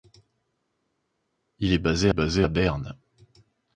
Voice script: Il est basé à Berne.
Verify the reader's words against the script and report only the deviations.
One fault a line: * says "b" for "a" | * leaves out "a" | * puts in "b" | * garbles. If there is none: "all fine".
* puts in "basé"